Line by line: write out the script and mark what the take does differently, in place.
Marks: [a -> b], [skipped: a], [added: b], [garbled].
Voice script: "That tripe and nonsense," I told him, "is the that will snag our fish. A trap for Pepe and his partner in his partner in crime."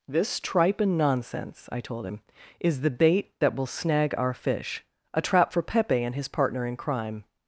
["That -> This] tripe and nonsense," I told him, "is the [added: bait] that will snag our fish. A trap for Pepe and his partner in [skipped: his partner in] crime."